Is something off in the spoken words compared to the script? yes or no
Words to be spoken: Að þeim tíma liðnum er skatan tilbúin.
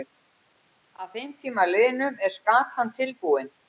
no